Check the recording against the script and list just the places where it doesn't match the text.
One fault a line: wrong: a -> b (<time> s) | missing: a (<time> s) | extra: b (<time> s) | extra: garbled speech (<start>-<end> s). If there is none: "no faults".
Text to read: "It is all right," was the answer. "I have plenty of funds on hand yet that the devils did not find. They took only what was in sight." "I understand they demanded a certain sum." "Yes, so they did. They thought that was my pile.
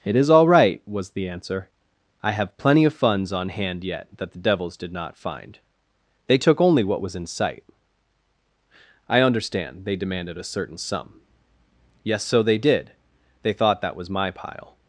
no faults